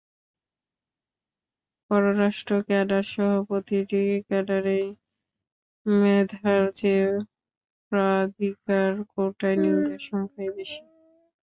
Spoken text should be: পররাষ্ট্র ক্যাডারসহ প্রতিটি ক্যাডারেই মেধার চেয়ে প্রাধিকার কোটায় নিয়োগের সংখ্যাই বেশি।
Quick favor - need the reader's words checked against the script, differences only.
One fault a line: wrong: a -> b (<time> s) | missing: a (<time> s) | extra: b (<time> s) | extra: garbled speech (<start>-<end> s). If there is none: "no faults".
no faults